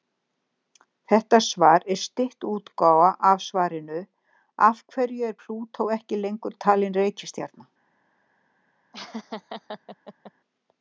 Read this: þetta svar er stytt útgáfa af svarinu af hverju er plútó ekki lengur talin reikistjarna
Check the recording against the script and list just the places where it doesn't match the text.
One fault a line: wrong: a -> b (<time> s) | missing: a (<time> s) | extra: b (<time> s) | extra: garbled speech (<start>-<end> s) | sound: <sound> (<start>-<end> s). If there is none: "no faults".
sound: laugh (8.9-10.3 s)